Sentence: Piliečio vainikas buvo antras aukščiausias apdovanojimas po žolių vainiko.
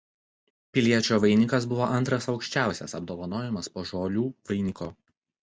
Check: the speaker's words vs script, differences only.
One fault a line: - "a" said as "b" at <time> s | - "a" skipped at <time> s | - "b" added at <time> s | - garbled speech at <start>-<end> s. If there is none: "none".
none